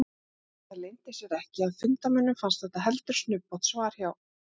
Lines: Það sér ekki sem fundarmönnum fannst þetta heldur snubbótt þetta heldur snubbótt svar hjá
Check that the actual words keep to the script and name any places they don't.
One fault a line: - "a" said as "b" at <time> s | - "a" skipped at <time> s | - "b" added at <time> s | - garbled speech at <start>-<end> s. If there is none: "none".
- "leyndi" added at 0.8 s
- "sem" said as "að" at 1.7 s
- "þetta heldur snubbótt" skipped at 3.7 s